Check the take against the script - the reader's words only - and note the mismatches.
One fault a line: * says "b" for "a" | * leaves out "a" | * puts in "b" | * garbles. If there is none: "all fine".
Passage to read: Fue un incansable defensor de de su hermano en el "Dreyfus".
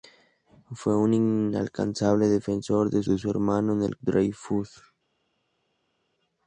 all fine